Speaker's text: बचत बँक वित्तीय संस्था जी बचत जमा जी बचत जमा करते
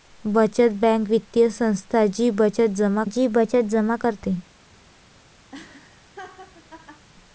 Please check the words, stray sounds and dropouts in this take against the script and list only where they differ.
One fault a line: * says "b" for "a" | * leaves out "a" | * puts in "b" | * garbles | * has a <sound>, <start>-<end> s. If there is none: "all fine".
* has a laugh, 5.5-7.1 s